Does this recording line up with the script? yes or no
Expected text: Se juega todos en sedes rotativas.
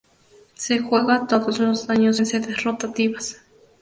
no